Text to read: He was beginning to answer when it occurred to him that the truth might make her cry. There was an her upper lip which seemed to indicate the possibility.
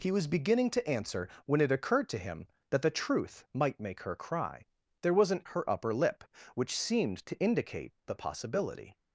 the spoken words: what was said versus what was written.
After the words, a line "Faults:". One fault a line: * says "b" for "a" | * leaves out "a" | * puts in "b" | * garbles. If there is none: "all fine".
He was beginning to answer when it occurred to him that the truth might make her cry. There was an her upper lip which seemed to indicate the possibility.
Faults:
all fine